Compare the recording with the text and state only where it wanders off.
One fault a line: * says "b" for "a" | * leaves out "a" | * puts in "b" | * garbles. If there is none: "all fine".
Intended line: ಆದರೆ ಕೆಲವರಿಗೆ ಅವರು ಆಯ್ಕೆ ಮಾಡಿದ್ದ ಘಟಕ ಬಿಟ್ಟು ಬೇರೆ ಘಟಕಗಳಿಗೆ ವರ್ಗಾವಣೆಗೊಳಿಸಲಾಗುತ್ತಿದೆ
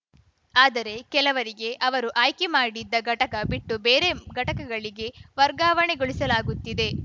all fine